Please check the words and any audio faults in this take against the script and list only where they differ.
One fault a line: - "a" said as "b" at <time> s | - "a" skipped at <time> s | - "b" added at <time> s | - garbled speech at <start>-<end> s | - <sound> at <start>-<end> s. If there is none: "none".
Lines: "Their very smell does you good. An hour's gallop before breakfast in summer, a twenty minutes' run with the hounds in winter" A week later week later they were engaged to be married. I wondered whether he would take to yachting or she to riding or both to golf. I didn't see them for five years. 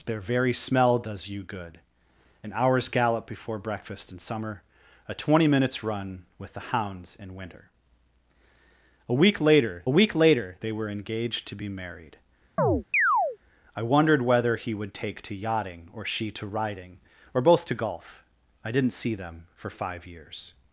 - chirp at 12.6-13.4 s